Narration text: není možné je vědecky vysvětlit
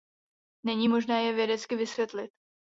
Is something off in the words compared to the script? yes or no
no